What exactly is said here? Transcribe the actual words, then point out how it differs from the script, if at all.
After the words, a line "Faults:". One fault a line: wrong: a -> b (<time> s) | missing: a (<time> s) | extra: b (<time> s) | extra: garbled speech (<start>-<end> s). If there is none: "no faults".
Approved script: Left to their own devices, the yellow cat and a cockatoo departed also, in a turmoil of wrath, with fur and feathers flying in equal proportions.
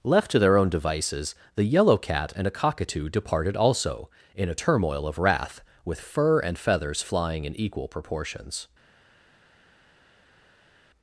Left to their own devices, the yellow cat and a cockatoo departed also, in a turmoil of wrath, with fur and feathers flying in equal proportions.
Faults:
no faults